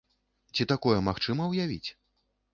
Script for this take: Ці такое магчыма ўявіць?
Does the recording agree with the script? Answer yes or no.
yes